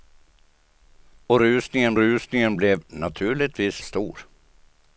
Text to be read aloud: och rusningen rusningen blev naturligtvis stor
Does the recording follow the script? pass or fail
pass